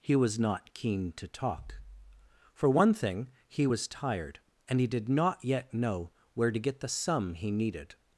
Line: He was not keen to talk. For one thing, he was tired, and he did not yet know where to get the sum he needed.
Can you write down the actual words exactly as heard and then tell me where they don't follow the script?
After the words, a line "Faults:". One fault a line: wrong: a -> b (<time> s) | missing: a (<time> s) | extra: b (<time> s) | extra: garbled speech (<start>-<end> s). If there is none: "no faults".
He was not keen to talk. For one thing, he was tired, and he did not yet know where to get the sum he needed.
Faults:
no faults